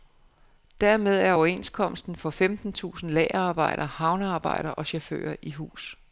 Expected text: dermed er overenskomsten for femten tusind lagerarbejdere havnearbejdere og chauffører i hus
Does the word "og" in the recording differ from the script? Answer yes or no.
no